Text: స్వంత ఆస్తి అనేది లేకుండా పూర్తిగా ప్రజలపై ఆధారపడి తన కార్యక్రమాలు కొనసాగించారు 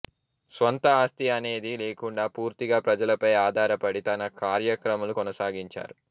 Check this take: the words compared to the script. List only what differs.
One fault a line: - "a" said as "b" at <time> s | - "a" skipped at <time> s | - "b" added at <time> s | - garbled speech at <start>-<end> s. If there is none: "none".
none